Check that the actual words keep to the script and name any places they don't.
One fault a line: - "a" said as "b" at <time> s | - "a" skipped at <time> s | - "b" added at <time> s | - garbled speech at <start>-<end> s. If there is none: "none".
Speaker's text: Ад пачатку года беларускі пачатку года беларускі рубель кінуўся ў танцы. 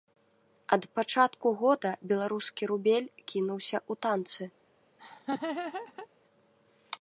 - "пачатку года беларускі" skipped at 2.6 s